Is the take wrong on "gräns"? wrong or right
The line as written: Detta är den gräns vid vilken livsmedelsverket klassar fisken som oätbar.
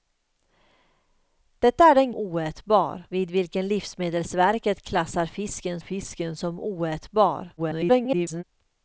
wrong